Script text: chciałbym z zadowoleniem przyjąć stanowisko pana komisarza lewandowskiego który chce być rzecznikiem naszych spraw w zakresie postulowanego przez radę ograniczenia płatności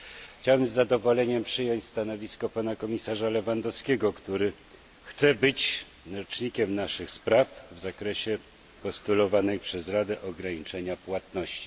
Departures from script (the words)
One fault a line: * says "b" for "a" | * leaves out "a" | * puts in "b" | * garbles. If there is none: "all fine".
all fine